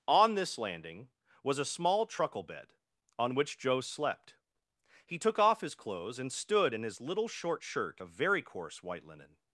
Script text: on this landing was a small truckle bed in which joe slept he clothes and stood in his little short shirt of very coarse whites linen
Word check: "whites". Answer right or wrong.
wrong